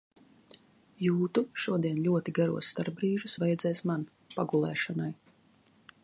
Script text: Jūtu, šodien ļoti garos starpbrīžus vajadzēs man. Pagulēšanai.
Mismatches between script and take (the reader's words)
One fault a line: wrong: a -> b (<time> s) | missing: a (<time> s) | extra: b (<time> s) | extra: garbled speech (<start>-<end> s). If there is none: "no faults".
no faults